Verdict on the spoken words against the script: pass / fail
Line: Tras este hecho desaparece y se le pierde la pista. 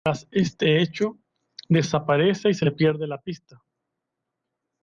pass